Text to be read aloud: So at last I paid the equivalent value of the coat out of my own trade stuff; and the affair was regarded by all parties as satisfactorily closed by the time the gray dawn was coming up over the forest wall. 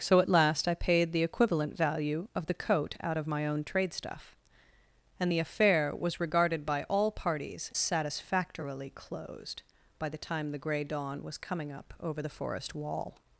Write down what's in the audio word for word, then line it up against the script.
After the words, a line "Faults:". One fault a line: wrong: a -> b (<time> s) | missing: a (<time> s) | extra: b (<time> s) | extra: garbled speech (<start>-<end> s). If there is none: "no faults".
So at last I paid the equivalent value of the coat out of my own trade stuff; and the affair was regarded by all parties satisfactorily closed by the time the gray dawn was coming up over the forest wall.
Faults:
missing: as (7.7 s)